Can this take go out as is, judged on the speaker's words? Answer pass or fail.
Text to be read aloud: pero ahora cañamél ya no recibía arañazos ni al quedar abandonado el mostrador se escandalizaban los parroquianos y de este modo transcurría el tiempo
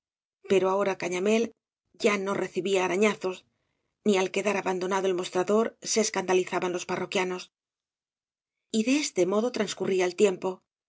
pass